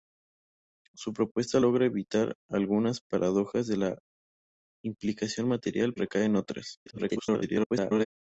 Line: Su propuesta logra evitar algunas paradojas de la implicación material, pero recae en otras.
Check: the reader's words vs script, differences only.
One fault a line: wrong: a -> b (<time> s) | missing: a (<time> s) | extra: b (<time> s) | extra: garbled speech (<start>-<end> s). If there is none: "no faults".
missing: pero (6.0 s)
extra: garbled speech (6.9-8.1 s)